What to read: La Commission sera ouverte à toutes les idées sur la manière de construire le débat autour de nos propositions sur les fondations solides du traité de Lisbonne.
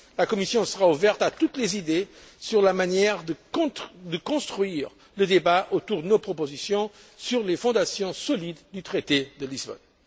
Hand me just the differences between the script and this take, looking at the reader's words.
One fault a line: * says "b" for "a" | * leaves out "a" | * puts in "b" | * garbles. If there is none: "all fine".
all fine